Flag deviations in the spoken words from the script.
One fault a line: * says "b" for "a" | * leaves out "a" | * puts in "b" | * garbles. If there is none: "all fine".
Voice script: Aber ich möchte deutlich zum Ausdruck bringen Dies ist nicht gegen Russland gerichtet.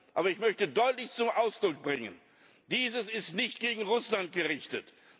all fine